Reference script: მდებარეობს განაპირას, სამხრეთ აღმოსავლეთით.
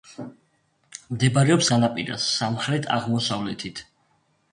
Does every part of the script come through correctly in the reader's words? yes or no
yes